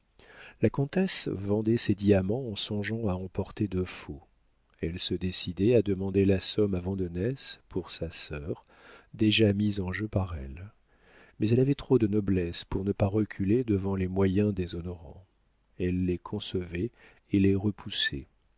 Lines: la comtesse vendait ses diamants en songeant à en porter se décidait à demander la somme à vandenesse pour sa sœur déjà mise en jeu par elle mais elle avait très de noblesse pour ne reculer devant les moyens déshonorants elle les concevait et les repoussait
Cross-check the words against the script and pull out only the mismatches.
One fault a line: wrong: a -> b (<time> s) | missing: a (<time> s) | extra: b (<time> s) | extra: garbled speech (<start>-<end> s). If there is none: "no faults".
extra: de faux elle (3.7 s)
wrong: très -> trop (11.8 s)
extra: pas (12.9 s)